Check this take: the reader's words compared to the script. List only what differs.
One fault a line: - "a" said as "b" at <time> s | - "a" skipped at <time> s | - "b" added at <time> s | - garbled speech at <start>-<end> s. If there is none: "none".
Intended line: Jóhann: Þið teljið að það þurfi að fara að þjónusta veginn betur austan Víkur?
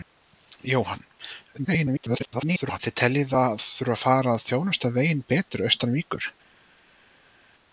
- garbled speech at 1.6-2.8 s
- "það" skipped at 3.5 s